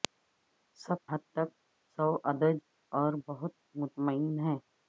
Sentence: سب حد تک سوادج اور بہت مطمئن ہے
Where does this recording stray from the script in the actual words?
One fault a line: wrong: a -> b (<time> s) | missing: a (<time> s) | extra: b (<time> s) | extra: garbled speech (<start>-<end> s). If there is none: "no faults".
no faults